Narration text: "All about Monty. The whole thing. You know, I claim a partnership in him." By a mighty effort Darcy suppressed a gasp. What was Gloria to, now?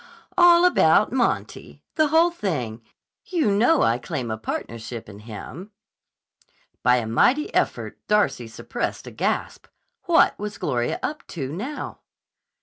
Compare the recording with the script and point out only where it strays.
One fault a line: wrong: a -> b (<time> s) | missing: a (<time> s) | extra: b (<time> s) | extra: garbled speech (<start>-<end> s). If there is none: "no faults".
extra: up (11.0 s)